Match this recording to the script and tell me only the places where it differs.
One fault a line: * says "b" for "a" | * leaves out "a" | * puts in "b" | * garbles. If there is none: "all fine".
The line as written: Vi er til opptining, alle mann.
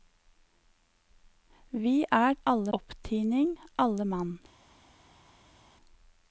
* says "alle" for "til"